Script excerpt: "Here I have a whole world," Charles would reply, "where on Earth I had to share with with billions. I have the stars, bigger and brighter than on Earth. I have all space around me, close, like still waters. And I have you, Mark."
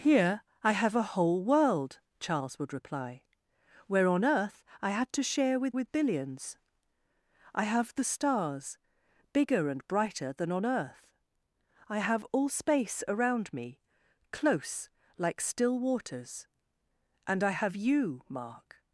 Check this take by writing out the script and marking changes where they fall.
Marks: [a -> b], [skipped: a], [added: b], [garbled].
"Here I have a whole world," Charles would reply, "where on Earth I had to share with with billions. I have the stars, bigger and brighter than on Earth. I have all space around me, close, like still waters. And I have you, Mark."